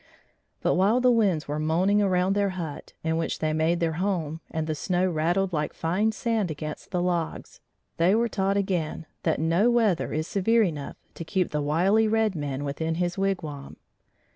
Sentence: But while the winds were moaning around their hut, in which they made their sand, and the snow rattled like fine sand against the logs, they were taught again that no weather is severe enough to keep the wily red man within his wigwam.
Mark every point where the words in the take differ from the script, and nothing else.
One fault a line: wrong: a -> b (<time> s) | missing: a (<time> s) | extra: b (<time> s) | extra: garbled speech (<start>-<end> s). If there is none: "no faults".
wrong: sand -> home (4.0 s)